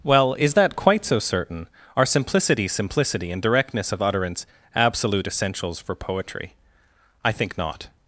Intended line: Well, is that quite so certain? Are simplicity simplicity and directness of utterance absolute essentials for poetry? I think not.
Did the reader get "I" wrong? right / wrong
right